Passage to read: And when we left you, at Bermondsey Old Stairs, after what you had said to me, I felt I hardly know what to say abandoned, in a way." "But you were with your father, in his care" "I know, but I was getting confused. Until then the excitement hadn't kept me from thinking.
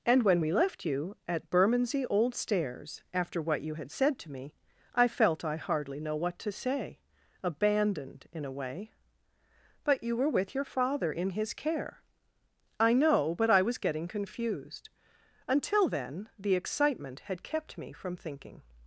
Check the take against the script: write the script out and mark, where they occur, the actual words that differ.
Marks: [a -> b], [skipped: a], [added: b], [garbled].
And when we left you, at Bermondsey Old Stairs, after what you had said to me, I felt I hardly know what to say abandoned, in a way." "But you were with your father, in his care" "I know, but I was getting confused. Until then the excitement [hadn't -> had] kept me from thinking.